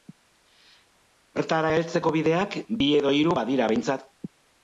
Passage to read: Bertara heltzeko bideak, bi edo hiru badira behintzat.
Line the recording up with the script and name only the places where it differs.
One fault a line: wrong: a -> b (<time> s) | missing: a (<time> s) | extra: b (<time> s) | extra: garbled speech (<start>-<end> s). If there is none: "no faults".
no faults